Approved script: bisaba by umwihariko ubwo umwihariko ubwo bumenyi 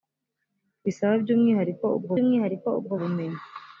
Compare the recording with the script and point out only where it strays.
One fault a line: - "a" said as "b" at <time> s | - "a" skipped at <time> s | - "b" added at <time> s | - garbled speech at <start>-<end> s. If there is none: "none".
none